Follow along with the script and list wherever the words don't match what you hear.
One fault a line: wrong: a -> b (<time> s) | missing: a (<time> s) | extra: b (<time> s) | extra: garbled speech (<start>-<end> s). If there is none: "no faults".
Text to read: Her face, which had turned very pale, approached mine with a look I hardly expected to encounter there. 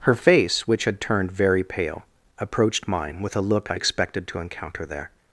missing: hardly (3.8 s)